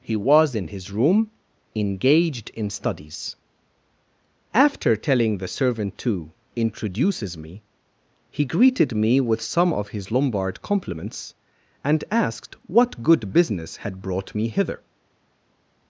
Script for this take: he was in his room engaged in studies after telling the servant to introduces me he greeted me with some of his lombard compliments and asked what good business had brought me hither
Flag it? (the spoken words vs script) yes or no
no